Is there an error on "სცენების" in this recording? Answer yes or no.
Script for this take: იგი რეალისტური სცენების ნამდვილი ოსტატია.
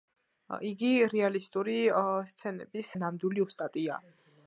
no